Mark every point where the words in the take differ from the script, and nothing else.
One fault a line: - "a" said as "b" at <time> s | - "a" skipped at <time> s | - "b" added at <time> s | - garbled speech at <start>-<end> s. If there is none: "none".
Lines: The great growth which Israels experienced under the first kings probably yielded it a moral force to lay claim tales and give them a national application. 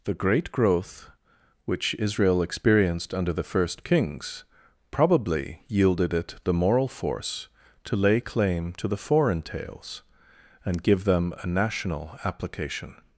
- "Israels" said as "Israel" at 2.0 s
- "a" said as "the" at 6.4 s
- "to the foreign" added at 8.7 s